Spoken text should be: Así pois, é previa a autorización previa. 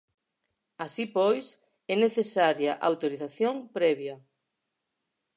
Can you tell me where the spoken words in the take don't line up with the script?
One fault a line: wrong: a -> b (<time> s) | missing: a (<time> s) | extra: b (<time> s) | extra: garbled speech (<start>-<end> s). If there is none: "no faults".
wrong: previa -> necesaria (2.0 s)